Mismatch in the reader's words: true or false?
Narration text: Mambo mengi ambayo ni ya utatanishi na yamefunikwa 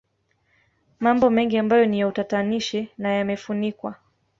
false